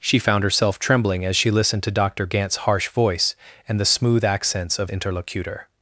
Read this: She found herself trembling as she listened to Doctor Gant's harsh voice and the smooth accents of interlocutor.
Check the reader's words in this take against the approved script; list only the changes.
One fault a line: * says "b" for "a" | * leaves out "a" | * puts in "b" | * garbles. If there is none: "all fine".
all fine